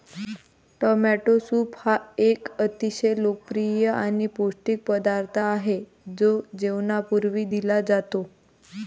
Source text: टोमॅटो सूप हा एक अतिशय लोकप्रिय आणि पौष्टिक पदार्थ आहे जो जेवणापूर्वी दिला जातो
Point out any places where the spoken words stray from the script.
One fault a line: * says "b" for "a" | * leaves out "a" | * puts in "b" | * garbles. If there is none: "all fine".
all fine